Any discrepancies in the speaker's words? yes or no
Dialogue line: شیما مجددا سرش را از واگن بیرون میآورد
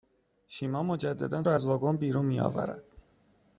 yes